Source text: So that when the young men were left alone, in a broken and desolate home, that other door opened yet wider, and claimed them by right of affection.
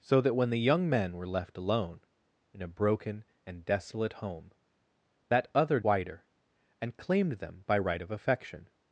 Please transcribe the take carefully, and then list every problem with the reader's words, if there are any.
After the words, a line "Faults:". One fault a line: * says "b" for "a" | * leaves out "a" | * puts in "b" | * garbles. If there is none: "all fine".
So that when the young men were left alone, in a broken and desolate home, that other wider, and claimed them by right of affection.
Faults:
* leaves out "door opened yet"